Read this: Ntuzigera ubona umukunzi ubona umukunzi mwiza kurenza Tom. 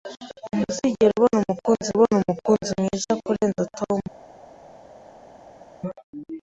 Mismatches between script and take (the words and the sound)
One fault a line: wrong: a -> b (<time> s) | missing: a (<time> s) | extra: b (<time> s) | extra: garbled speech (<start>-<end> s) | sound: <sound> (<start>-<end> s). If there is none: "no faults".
no faults